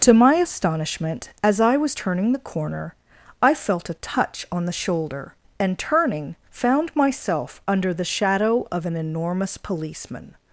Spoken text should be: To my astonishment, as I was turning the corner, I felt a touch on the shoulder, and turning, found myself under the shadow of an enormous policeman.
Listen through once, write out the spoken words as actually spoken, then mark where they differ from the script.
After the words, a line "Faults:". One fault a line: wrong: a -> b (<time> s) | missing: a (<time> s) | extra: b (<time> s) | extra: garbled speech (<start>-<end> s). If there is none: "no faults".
To my astonishment, as I was turning the corner, I felt a touch on the shoulder, and turning, found myself under the shadow of an enormous policeman.
Faults:
no faults